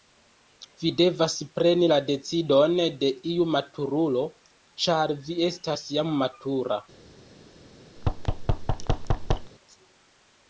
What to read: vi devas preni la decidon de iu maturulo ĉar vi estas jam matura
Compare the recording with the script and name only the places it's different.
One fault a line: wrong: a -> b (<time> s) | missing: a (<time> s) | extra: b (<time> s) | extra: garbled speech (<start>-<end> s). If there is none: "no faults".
no faults